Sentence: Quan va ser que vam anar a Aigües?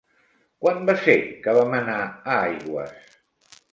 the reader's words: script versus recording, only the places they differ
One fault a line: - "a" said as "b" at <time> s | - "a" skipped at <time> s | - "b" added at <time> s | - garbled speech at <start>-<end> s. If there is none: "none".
none